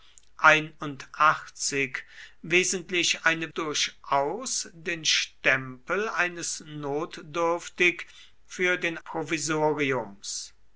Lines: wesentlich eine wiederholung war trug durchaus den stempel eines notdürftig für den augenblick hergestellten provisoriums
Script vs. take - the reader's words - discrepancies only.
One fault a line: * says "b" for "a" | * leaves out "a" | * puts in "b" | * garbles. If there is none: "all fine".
* leaves out "wiederholung war trug"
* leaves out "augenblick hergestellten"